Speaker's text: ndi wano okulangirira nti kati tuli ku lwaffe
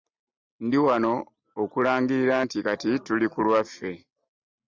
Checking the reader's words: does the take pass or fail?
pass